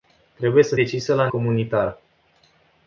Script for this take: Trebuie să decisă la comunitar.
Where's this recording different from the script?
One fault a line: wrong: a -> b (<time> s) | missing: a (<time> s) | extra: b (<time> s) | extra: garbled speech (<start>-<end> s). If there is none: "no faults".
no faults